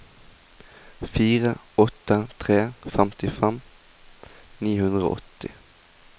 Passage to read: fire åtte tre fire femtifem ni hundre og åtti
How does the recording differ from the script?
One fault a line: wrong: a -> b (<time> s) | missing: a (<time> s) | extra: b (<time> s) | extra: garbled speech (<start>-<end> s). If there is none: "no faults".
missing: fire (2.6 s)